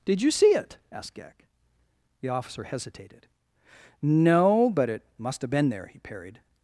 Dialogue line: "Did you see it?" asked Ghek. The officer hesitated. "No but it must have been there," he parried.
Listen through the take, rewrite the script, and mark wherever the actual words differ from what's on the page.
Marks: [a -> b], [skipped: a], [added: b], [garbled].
"Did you see it?" asked Ghek. The officer hesitated. "No but it must have been there," he parried.